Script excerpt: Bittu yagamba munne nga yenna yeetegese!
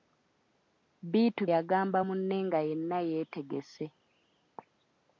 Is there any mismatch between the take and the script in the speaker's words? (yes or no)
no